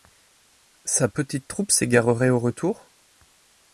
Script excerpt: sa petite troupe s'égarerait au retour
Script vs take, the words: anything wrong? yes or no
no